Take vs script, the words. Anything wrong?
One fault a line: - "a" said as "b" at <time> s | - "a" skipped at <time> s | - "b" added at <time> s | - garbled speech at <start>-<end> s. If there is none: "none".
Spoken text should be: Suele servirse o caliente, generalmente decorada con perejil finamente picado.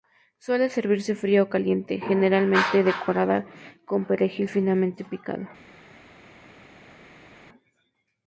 - "fría" added at 1.1 s